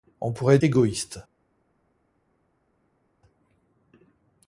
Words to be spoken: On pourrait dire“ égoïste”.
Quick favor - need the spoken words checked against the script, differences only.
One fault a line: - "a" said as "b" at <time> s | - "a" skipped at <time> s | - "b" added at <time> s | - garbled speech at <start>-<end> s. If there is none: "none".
- "dire" skipped at 0.6 s